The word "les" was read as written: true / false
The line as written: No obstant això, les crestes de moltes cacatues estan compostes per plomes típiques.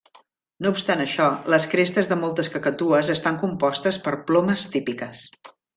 true